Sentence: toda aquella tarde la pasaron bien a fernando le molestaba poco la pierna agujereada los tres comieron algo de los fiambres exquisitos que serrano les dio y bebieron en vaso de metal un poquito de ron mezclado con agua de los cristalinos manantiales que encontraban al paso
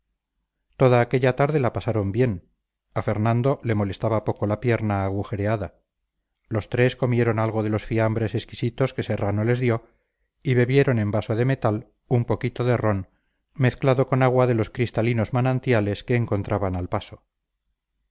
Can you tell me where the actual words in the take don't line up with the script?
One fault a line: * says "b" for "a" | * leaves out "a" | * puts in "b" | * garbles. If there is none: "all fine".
all fine